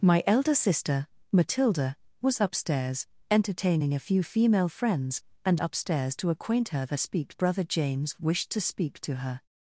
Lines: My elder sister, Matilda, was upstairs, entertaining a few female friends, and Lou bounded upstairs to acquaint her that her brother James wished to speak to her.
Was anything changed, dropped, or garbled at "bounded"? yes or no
yes